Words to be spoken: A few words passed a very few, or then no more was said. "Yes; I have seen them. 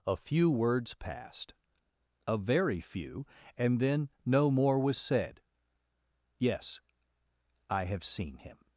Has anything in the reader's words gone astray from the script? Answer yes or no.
yes